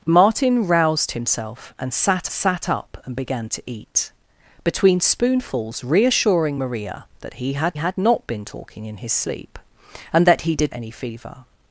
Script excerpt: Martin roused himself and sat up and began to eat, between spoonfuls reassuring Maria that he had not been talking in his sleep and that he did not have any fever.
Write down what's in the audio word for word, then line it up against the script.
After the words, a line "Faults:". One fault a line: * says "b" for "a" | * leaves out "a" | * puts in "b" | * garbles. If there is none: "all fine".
Martin roused himself and sat sat up and began to eat, between spoonfuls reassuring Maria that he had had not been talking in his sleep and that he did any fever.
Faults:
* puts in "sat"
* puts in "had"
* leaves out "not have"